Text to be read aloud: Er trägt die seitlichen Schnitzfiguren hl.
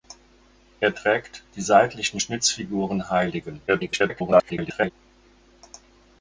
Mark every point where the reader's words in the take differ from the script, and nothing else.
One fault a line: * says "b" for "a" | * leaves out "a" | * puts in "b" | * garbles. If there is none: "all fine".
* garbles